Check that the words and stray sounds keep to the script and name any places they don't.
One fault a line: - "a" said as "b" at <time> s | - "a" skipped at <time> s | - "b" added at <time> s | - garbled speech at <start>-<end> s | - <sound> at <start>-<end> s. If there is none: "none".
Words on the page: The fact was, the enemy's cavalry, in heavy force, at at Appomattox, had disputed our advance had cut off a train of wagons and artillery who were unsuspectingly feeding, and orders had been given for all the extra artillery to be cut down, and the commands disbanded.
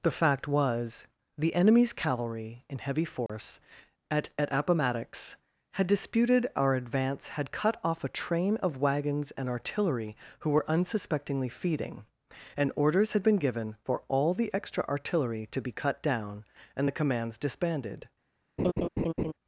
- dropout at 3.3-3.3 s
- laugh at 18.6-19.3 s